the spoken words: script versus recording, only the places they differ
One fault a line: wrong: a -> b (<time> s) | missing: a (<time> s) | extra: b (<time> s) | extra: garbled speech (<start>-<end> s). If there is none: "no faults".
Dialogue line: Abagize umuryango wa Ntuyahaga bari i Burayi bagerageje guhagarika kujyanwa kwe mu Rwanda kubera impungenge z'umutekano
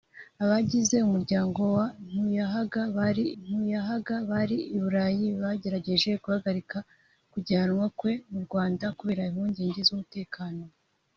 extra: Ntuyahaga bari (3.4 s)